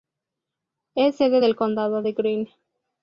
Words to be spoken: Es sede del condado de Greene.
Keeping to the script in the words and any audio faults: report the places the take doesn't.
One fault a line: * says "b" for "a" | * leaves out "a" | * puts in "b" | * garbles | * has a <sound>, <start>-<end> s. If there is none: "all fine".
all fine